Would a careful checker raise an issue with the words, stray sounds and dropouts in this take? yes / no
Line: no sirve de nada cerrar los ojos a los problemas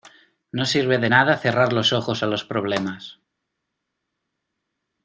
no